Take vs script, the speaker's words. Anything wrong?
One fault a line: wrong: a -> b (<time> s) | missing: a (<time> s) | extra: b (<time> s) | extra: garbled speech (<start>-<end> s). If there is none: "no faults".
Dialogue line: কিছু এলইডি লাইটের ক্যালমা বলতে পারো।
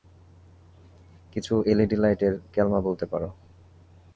no faults